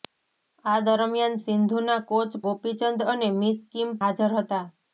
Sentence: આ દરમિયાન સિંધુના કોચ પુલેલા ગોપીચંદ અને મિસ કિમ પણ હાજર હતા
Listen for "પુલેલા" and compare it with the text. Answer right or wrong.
wrong